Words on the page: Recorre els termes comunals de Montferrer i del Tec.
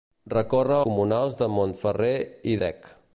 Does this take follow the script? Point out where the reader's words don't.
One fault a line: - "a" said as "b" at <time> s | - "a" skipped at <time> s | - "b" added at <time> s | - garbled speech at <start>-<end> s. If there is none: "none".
- "els termes" skipped at 0.8 s
- "del" skipped at 2.6 s